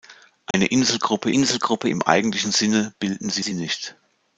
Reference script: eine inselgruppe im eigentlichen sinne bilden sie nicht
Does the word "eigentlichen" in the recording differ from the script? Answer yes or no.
no